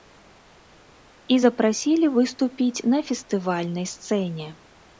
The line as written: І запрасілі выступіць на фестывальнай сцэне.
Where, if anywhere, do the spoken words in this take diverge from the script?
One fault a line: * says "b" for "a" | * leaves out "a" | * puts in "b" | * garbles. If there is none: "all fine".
all fine